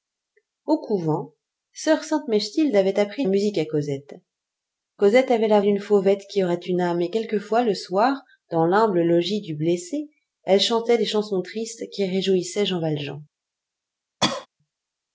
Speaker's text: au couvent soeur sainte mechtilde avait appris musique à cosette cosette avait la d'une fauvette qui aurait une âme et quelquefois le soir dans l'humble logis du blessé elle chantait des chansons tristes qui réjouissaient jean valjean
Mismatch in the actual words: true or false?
false